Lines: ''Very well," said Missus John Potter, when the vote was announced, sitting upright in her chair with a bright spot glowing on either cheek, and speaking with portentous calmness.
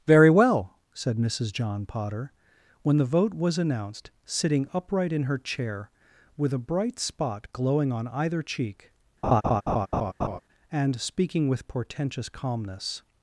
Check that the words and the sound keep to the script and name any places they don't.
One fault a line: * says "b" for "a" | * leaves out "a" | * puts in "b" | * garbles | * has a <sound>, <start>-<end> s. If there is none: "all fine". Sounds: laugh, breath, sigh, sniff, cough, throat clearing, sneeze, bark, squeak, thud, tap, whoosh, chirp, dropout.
* has a laugh, 9.2-10.4 s